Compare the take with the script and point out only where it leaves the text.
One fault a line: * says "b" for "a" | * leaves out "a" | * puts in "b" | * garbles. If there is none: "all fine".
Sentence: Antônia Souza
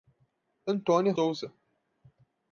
all fine